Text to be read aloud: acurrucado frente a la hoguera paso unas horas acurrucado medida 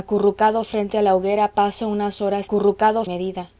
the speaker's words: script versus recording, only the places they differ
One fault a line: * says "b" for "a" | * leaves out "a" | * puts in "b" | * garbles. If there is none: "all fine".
all fine